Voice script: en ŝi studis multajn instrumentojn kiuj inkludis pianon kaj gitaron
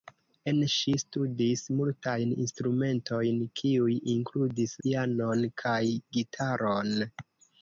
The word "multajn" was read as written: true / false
true